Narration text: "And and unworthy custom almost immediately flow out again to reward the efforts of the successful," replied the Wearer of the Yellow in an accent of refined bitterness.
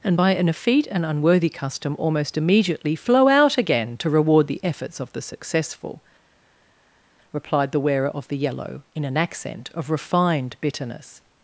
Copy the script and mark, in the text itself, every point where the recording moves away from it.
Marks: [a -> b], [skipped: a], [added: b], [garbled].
"And [added: by an effete] and unworthy custom almost immediately flow out again to reward the efforts of the successful," replied the Wearer of the Yellow in an accent of refined bitterness.